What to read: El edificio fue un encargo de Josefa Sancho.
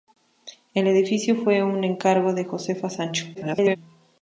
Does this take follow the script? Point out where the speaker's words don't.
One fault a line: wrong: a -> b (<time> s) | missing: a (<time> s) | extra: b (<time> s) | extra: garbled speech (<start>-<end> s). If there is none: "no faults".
extra: garbled speech (3.3-3.8 s)